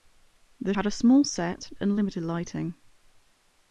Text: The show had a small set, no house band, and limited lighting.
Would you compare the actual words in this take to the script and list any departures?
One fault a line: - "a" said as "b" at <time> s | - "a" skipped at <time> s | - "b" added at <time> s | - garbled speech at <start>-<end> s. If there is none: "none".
- "show" skipped at 0.7 s
- "no house band" skipped at 1.7 s